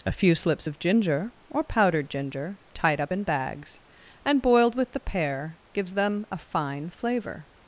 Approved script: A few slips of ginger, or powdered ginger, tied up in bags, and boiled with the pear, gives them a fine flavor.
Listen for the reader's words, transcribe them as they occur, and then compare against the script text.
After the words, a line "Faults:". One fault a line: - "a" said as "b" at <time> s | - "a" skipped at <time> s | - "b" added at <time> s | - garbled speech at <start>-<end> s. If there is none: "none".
A few slips of ginger, or powdered ginger, tied up in bags, and boiled with the pear, gives them a fine flavor.
Faults:
none